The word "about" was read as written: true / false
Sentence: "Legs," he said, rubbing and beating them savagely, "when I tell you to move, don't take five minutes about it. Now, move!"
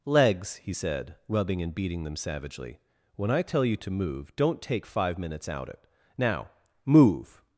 false